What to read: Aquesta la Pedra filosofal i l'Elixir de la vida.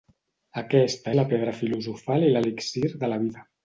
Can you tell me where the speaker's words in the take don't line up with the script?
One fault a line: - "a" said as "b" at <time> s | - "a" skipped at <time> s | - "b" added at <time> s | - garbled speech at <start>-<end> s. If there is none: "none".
none